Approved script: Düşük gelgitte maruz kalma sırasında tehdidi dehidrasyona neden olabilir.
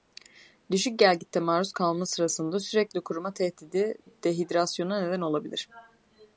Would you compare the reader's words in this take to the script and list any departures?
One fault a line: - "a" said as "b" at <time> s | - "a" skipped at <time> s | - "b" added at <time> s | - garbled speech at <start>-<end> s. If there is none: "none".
- "sürekli kuruma" added at 2.6 s